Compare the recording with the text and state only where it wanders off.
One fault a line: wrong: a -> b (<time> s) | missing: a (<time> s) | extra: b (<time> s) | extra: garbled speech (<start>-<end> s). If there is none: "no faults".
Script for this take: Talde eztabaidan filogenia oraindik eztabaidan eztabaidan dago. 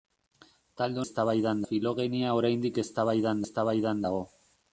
no faults